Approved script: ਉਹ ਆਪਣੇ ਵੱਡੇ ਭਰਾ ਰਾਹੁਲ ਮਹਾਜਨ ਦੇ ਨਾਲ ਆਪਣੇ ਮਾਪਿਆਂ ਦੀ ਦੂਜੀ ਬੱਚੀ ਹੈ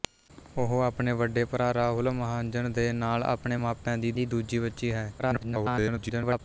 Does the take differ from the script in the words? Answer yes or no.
yes